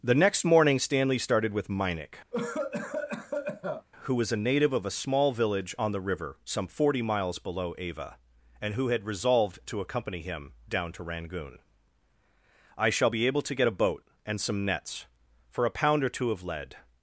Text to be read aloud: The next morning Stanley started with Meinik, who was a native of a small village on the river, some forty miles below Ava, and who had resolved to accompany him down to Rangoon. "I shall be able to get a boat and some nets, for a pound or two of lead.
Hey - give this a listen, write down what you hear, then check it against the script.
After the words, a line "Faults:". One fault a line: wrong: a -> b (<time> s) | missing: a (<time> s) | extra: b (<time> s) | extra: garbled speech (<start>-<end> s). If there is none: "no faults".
The next morning Stanley started with Meinik, who was a native of a small village on the river, some forty miles below Ava, and who had resolved to accompany him down to Rangoon. "I shall be able to get a boat and some nets, for a pound or two of lead.
Faults:
no faults